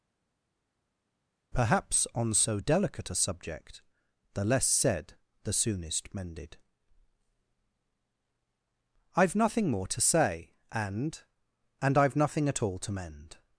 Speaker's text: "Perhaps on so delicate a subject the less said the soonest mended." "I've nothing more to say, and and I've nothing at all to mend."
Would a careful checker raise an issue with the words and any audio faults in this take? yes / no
no